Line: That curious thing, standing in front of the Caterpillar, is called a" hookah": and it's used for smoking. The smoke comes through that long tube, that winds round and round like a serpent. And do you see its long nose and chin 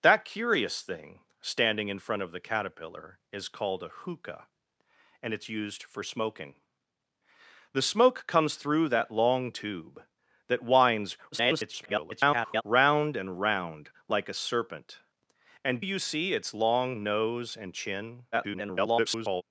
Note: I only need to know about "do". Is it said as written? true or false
false